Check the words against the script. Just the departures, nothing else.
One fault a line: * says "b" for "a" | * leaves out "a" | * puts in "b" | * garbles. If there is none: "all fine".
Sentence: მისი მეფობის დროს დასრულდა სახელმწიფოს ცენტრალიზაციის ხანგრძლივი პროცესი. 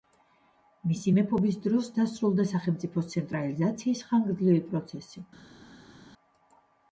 all fine